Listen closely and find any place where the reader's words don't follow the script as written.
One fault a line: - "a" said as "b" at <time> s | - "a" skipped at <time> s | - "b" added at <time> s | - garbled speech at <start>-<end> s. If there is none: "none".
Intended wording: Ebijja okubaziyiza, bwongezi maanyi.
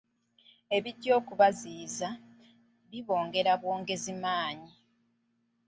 - "bibongera" added at 2.9 s